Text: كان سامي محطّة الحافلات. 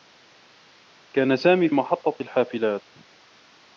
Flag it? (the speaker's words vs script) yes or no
no